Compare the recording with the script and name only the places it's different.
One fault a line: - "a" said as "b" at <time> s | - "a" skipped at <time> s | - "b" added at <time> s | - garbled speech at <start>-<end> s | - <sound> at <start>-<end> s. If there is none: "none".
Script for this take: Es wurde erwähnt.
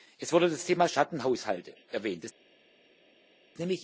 - "das Thema Schattenhaushalte" added at 0.5 s